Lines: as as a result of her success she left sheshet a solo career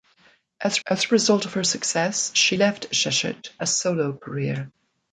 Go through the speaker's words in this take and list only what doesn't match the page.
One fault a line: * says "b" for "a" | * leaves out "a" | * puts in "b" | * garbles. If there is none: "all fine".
all fine